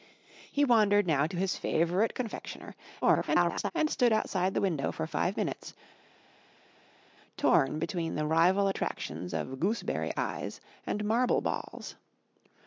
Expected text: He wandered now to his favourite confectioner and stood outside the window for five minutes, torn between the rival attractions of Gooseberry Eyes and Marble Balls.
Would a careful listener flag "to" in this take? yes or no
no